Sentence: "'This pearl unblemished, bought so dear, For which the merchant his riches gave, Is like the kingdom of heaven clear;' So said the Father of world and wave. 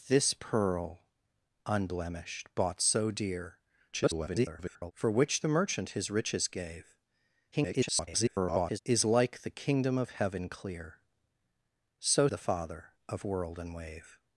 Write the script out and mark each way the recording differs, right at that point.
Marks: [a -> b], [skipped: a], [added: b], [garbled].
"'This pearl unblemished, bought so dear, [garbled] For which the merchant his riches gave, [garbled] Is like the kingdom of heaven clear;' So [skipped: said] the Father of world and wave.